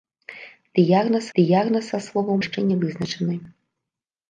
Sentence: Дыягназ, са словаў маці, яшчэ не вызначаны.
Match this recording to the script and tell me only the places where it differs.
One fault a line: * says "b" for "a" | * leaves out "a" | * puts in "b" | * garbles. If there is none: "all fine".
* puts in "дыягназ"
* leaves out "маці"